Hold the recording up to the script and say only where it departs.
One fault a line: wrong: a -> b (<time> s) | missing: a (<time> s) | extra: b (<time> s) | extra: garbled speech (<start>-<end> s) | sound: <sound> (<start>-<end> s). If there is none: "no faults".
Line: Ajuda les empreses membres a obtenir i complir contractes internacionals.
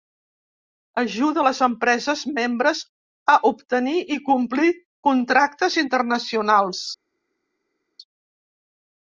no faults